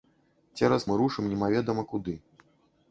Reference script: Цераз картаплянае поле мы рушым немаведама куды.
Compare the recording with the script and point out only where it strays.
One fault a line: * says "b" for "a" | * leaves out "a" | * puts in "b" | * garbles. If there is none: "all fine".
* leaves out "картаплянае поле"